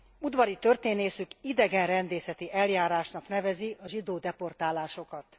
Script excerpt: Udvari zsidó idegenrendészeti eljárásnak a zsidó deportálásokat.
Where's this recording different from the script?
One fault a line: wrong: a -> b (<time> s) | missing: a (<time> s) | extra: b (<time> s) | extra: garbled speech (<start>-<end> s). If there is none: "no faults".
wrong: zsidó -> történészük (0.6 s)
extra: nevezi (3.3 s)